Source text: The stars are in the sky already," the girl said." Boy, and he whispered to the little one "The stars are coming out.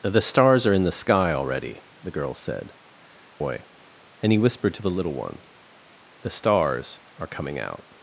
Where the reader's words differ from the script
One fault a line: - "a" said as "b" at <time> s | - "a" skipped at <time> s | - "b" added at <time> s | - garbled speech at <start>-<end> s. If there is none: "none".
none